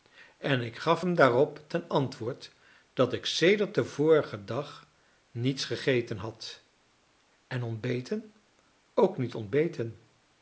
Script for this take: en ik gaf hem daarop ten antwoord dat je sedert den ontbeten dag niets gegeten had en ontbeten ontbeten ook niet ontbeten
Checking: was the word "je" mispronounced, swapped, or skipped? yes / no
yes